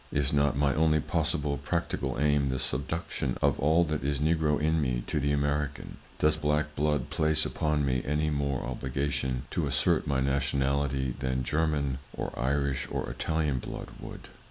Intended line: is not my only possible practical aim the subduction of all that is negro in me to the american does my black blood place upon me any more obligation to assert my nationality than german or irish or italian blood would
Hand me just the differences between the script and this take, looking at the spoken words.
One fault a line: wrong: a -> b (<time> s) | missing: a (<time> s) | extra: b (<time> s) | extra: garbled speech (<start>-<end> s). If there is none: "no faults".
missing: my (6.4 s)